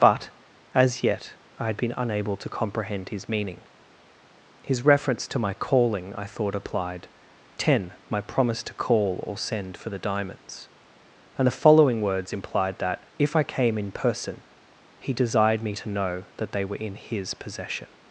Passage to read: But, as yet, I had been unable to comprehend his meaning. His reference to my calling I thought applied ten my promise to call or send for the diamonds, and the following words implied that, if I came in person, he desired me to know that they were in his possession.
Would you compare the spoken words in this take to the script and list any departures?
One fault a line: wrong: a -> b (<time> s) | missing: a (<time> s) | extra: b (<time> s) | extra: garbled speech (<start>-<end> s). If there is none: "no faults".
no faults